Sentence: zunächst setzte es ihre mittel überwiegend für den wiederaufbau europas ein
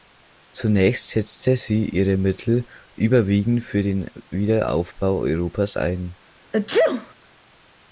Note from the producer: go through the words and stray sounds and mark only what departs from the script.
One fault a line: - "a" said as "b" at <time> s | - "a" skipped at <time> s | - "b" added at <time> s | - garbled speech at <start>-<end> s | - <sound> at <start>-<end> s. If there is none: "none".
- "es" said as "sie" at 1.6 s
- sneeze at 6.5-7.1 s